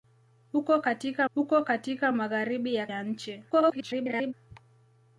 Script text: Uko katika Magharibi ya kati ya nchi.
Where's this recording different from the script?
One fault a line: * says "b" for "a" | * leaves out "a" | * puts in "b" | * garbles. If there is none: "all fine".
* puts in "uko katika"
* leaves out "kati"
* garbles